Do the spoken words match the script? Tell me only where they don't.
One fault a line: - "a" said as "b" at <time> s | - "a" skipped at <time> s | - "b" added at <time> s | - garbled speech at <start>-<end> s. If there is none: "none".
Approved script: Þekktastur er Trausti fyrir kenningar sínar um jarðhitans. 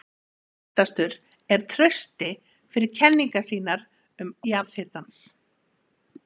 none